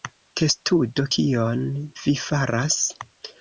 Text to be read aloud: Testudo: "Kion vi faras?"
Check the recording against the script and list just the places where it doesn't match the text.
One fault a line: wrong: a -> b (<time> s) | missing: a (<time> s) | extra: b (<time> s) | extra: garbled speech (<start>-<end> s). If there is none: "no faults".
no faults